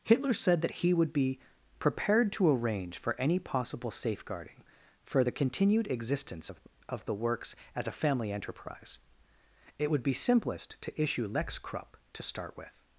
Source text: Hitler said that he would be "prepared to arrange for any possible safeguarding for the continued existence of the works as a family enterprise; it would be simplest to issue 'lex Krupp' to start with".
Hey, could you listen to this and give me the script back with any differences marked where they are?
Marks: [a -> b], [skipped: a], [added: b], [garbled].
Hitler said that he would be "prepared to arrange for any possible safeguarding for the continued existence of [added: of] the works as a family enterprise; it would be simplest to issue 'lex Krupp' to start with".